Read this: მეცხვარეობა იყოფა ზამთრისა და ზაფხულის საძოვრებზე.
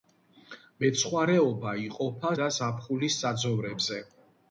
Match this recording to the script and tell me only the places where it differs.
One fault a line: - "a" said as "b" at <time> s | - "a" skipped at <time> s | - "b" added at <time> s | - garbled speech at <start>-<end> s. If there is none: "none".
- "ზამთრისა" skipped at 2.3 s